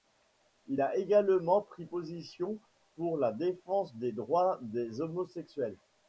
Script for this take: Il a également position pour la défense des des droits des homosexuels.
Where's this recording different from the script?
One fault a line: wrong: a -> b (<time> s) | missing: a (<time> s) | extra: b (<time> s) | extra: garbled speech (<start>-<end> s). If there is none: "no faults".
extra: pris (1.6 s)
missing: des (4.1 s)